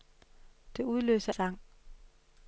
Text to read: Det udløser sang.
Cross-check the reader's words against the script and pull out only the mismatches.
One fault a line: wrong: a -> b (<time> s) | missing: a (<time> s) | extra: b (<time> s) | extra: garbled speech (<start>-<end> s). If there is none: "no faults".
no faults